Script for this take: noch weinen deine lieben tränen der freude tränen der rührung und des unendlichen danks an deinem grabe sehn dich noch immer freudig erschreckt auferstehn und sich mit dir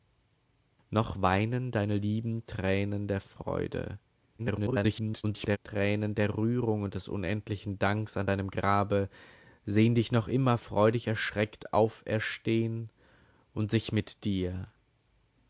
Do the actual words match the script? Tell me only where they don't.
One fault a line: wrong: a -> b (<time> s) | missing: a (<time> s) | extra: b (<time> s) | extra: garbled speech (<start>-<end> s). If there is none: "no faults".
extra: garbled speech (4.4-5.6 s)